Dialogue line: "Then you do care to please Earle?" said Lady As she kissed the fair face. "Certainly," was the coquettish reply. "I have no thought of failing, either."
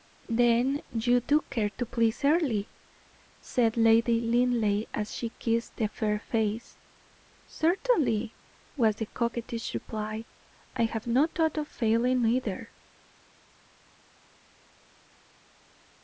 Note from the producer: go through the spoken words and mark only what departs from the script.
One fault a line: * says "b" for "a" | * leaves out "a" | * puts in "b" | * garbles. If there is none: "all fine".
* puts in "Linleigh"